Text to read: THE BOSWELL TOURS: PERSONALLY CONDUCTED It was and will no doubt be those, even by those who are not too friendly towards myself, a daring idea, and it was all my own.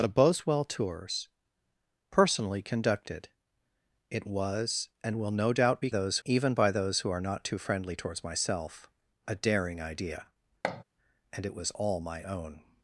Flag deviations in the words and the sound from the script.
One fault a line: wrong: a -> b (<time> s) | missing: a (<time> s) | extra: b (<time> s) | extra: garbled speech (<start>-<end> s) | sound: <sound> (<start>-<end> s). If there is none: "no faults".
sound: thud (10.6-10.8 s)